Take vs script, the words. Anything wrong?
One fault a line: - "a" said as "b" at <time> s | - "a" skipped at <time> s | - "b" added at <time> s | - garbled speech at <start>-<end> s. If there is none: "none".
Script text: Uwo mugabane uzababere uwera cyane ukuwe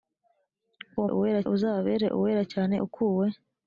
- "mugabane" said as "uwera" at 1.1 s